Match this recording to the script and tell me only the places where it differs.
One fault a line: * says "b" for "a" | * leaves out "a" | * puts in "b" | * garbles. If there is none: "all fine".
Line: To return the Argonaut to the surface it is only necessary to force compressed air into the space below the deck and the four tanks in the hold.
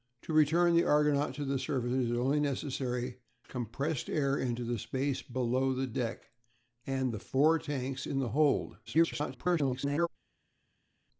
* leaves out "to force"
* garbles